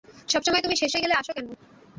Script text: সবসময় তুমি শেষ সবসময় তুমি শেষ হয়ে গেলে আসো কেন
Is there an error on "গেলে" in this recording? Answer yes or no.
no